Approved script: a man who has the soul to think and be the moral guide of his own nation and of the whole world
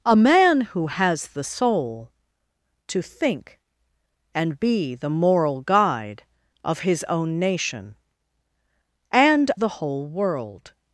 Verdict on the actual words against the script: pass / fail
fail